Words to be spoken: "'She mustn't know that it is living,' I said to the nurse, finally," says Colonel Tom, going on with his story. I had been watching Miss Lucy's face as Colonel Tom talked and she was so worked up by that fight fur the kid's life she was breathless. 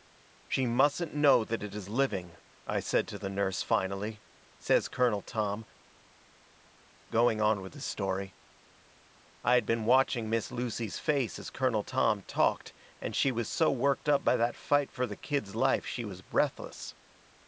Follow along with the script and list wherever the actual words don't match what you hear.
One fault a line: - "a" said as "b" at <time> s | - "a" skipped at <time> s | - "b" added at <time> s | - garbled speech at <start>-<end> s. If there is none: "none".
none